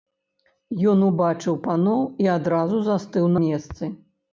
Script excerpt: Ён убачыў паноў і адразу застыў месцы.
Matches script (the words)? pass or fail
pass